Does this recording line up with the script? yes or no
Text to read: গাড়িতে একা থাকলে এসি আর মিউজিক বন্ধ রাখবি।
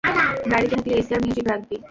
no